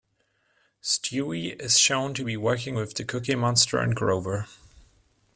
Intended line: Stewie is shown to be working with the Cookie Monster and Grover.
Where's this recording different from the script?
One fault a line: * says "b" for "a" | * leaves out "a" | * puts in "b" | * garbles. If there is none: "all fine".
all fine